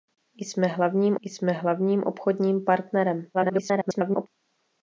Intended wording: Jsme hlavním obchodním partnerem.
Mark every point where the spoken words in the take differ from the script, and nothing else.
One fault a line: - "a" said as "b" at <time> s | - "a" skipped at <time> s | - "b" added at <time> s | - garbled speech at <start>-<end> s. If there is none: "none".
- "jsme hlavním" added at 1.2 s
- garbled speech at 3.3-4.3 s